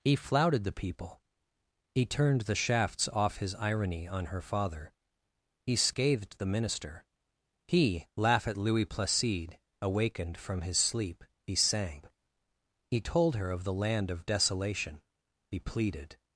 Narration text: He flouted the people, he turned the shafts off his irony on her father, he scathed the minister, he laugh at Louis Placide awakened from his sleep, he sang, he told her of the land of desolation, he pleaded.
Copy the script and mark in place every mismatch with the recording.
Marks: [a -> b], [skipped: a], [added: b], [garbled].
He flouted the people, he turned the shafts off his irony on her father, he scathed the minister, he laugh at Louis Placide awakened from his sleep, he sang, he told her of the land of desolation, he pleaded.